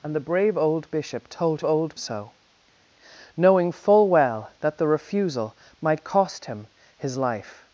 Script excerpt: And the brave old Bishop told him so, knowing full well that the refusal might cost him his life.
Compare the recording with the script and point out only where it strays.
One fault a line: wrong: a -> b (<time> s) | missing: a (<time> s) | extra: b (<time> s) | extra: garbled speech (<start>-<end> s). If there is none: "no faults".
wrong: him -> old (1.6 s)